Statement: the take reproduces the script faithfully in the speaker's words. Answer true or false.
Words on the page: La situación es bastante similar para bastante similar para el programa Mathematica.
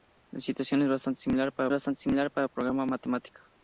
true